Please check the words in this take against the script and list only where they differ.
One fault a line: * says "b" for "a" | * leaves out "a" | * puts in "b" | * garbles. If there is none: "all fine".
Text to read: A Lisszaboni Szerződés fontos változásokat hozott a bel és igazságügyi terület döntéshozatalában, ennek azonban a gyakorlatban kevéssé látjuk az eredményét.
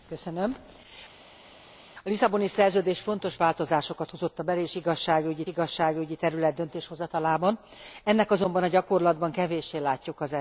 * puts in "igazságügyi"